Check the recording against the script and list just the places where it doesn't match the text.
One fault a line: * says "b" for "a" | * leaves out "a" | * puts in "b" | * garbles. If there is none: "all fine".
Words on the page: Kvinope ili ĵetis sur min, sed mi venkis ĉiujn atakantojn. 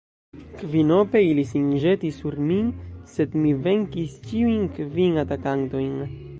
* puts in "sin"
* puts in "kvin"